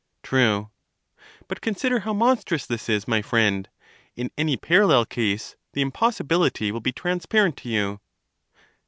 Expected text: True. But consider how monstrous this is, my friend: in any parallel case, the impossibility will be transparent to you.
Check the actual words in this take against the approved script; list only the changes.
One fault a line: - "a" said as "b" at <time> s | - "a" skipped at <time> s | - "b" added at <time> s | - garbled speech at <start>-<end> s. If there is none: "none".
none